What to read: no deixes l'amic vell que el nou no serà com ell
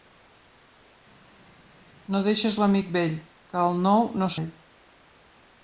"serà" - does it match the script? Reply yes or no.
no